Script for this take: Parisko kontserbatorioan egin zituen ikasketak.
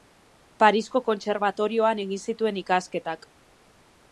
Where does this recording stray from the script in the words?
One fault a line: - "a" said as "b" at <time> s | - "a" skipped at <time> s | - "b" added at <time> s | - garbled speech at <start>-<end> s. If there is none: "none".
none